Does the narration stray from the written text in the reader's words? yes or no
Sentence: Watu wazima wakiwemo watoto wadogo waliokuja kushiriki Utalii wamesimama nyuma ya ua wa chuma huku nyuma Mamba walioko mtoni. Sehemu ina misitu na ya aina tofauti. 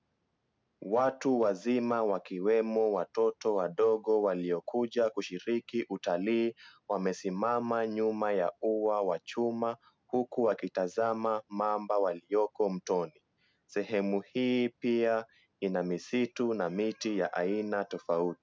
yes